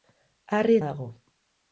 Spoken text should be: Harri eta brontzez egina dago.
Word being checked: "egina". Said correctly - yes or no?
no